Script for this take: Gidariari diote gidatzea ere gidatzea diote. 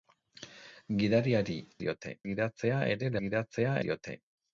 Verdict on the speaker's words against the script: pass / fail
pass